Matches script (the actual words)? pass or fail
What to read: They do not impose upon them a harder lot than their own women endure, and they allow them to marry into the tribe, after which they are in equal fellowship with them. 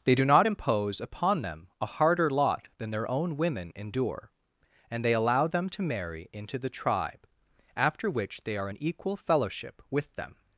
pass